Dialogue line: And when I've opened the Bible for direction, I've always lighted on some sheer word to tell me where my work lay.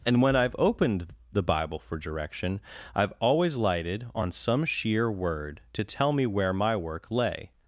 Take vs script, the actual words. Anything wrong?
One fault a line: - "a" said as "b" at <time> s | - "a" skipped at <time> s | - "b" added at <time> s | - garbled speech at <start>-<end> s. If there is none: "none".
none